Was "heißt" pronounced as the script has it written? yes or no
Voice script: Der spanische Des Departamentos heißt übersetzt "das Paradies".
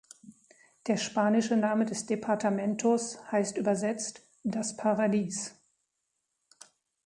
yes